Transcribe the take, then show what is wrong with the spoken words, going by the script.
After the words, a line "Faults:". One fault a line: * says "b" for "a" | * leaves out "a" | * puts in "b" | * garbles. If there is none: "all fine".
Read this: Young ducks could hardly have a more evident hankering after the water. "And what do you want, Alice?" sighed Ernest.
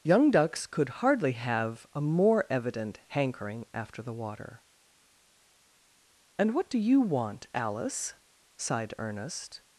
Young ducks could hardly have a more evident hankering after the water. "And what do you want, Alice?" sighed Ernest.
Faults:
all fine